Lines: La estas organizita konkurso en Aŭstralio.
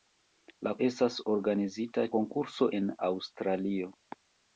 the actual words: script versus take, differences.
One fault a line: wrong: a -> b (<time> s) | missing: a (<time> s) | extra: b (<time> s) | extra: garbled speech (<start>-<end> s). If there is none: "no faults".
no faults